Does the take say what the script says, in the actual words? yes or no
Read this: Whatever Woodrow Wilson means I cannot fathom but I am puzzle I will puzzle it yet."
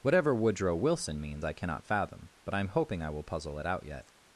no